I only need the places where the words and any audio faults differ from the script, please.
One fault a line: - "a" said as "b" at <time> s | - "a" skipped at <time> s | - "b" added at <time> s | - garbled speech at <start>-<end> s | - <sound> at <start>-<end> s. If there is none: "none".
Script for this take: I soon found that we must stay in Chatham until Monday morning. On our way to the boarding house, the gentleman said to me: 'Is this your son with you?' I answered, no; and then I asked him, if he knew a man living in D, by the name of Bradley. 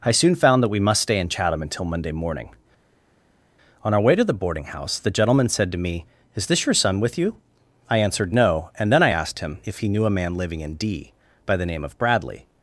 none